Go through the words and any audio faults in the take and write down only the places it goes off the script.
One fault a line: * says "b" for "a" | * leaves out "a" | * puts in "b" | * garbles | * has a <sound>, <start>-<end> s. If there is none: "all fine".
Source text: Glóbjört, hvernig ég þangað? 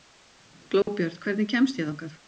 * has a dropout, 0.8-0.9 s
* puts in "kemst"